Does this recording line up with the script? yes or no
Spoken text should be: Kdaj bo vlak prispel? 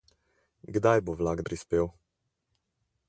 yes